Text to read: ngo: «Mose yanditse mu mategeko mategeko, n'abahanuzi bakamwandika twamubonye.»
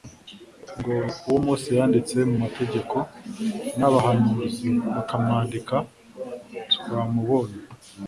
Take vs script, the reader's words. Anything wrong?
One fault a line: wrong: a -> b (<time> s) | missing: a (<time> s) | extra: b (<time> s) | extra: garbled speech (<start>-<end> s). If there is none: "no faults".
extra: Uwo (1.3 s)
missing: mategeko (3.0 s)